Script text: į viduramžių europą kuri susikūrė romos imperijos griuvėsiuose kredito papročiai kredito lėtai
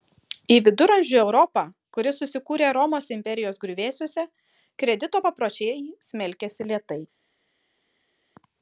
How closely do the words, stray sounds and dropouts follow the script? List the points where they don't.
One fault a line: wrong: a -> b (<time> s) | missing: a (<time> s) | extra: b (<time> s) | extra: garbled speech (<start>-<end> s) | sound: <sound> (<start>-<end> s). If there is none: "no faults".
wrong: kredito -> smelkėsi (6.1 s)